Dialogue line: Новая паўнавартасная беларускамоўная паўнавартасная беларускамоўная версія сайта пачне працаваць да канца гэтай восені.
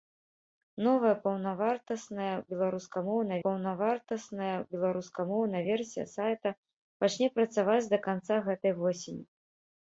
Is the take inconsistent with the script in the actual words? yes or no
no